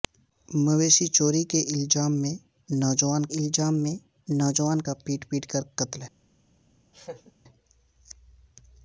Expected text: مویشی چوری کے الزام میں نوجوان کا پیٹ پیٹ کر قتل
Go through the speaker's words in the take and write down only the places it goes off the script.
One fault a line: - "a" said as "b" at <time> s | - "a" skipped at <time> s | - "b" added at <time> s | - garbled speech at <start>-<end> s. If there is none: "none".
- "الزام میں نوجوان" added at 3.4 s